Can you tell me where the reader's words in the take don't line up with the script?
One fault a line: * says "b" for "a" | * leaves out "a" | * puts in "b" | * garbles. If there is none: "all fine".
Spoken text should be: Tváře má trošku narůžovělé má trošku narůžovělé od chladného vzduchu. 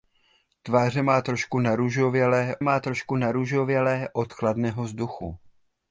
all fine